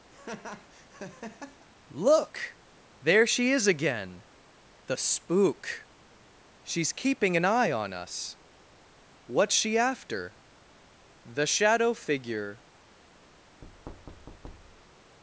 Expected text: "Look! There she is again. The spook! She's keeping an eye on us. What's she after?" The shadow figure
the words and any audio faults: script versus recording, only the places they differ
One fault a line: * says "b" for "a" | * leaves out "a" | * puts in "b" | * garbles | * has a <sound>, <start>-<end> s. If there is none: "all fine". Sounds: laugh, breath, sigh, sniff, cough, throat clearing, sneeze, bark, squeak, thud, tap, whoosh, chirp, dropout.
* has a laugh, 0.1-1.7 s
* has a thud, 13.6-15.2 s